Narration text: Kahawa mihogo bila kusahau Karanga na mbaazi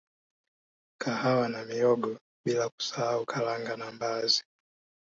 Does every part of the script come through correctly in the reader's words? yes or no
no